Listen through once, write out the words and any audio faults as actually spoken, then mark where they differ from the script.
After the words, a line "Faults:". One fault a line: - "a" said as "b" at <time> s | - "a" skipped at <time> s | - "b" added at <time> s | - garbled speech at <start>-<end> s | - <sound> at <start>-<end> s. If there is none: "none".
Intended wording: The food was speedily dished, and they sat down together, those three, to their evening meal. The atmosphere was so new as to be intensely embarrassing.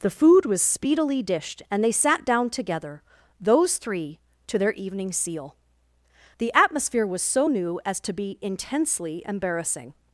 The food was speedily dished, and they sat down together, those three, to their evening seal. The atmosphere was so new as to be intensely embarrassing.
Faults:
- "meal" said as "seal" at 5.1 s